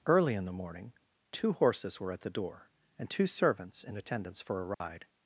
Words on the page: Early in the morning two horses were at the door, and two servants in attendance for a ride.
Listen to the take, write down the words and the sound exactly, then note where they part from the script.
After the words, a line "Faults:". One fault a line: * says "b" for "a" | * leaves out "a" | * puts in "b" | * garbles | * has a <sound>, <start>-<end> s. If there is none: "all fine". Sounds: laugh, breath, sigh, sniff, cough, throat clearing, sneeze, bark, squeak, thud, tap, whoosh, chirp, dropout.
Early in the morning two horses were at the door, and two servants in attendance for a ride.
Faults:
* has a dropout, 4.7-4.8 s